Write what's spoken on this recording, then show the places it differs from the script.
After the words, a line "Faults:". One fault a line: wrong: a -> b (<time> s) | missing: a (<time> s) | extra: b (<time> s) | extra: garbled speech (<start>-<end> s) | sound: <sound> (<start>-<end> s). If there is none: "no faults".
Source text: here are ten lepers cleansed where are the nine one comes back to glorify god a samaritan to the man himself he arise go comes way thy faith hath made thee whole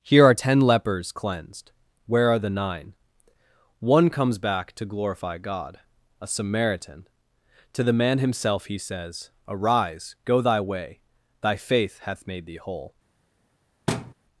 here are ten lepers cleansed where are the nine one comes back to glorify god a samaritan to the man himself he says arise go thy way thy faith hath made thee whole
Faults:
extra: says (8.8 s)
wrong: comes -> thy (10.4 s)
sound: thud (13.9-14.1 s)